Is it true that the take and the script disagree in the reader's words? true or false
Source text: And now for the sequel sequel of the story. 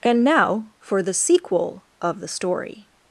true